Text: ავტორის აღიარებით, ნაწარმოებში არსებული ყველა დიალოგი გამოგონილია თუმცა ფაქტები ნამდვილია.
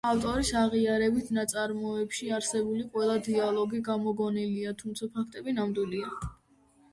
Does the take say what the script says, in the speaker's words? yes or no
yes